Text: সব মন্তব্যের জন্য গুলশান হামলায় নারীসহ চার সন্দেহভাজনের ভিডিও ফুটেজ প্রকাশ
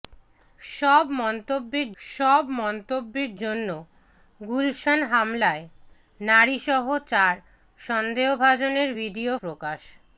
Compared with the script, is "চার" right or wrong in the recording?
right